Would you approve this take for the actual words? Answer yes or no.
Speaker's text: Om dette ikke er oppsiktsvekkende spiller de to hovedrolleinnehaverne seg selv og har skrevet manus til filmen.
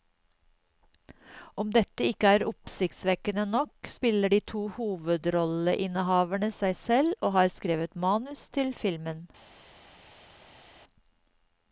no